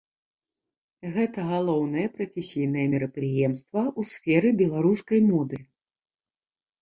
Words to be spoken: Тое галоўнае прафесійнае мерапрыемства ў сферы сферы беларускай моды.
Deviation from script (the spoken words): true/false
true